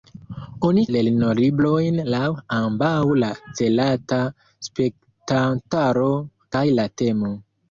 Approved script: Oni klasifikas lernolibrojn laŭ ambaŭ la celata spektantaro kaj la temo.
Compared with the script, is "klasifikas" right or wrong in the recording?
wrong